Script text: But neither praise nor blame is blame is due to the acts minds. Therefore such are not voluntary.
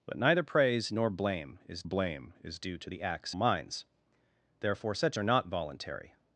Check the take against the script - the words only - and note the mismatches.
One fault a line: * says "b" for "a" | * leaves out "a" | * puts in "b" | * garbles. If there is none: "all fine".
all fine